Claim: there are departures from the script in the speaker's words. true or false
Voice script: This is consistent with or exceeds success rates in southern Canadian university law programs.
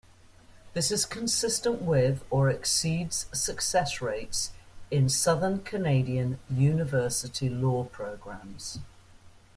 false